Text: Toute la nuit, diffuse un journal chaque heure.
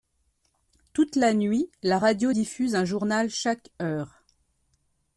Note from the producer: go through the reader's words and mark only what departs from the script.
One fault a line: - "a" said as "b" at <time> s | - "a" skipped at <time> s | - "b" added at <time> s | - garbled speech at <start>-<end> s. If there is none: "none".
- "la radio" added at 1.8 s